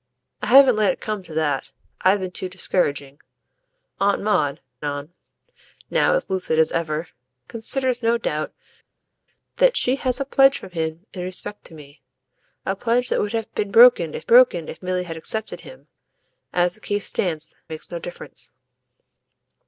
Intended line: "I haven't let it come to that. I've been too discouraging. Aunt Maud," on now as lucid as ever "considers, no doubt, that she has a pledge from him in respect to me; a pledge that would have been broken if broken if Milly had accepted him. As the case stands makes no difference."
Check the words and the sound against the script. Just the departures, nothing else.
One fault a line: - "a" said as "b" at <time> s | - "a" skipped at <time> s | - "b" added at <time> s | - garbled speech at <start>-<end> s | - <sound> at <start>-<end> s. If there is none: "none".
none